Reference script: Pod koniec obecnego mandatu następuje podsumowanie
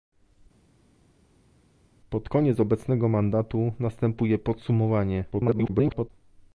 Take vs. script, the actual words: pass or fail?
fail